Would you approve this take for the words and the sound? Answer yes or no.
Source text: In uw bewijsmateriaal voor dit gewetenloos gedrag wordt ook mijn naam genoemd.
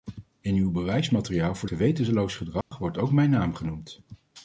no